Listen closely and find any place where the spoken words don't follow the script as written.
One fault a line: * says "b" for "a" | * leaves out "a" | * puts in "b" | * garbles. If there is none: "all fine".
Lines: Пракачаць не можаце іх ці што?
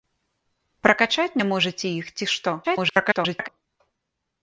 * garbles